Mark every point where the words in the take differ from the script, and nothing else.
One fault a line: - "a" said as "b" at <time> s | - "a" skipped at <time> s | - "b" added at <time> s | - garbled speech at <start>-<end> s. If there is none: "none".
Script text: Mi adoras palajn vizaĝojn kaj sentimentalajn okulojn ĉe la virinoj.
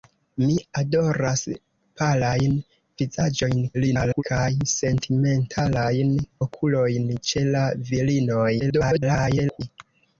- garbled speech at 3.7-4.2 s
- garbled speech at 8.6-9.6 s